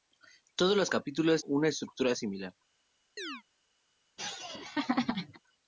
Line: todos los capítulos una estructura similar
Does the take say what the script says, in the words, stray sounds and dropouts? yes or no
no